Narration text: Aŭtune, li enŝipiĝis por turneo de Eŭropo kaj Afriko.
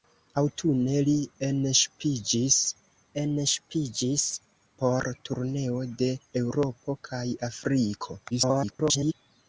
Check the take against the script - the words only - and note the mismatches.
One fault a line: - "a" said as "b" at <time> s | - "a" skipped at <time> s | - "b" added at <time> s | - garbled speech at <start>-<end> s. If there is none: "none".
- "enŝipiĝis" added at 3.2 s
- garbled speech at 8.3-9.1 s